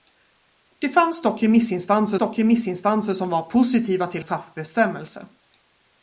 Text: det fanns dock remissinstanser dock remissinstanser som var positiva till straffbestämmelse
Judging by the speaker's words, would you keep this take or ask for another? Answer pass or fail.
pass